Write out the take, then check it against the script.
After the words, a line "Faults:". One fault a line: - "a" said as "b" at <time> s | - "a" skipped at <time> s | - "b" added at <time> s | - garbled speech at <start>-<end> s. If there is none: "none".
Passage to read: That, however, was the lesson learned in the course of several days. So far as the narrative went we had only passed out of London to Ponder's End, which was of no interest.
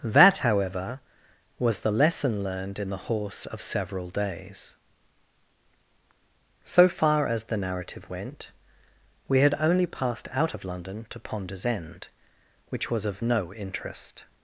That, however, was the lesson learned in the horse of several days. So far as the narrative went we had only passed out of London to Ponder's End, which was of no interest.
Faults:
- "course" said as "horse" at 3.0 s